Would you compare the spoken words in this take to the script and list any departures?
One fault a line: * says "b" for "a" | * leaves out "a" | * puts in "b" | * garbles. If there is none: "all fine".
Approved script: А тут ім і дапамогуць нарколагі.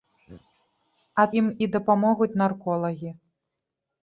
* leaves out "тут"